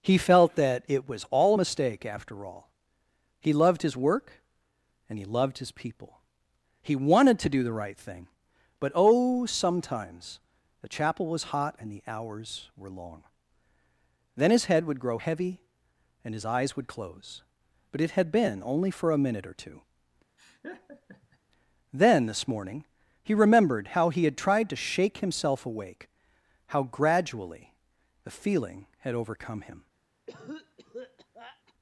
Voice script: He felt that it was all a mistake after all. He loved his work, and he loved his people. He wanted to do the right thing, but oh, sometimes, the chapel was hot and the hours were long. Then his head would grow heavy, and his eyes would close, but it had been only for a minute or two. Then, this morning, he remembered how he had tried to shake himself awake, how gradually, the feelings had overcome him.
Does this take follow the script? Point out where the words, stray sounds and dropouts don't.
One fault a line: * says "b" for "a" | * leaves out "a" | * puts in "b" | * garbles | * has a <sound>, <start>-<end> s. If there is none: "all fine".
* has a laugh, 20.4-21.4 s
* says "feeling" for "feelings"
* has a cough, 30.3-31.7 s